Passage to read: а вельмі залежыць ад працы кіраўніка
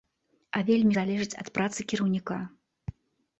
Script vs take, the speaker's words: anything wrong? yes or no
no